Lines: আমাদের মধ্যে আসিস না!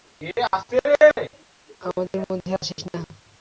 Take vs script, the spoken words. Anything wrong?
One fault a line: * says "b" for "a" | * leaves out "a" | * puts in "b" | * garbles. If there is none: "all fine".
all fine